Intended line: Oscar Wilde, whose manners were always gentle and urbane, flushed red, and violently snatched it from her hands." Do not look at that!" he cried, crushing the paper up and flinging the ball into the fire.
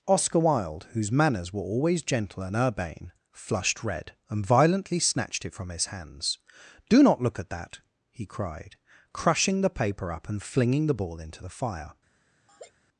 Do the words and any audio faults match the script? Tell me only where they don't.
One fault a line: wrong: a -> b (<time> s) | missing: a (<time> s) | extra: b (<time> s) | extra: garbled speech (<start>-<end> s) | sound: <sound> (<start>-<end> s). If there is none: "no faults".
wrong: her -> his (5.7 s)
sound: laugh (12.5-12.7 s)